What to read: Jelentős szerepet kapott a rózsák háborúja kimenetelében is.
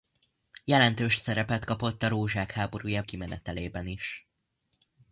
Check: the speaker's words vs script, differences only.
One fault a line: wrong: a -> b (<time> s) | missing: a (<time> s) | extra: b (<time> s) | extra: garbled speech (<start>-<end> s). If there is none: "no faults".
no faults